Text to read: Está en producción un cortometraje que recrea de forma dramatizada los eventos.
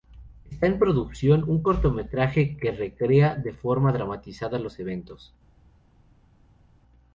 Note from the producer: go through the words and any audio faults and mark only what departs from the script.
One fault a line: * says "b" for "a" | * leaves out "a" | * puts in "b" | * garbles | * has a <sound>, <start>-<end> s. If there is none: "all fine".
all fine